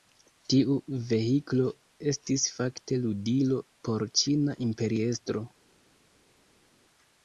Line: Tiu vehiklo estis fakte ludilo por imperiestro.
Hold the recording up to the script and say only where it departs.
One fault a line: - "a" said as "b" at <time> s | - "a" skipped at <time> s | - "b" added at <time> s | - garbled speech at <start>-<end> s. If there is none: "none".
- "ĉina" added at 4.2 s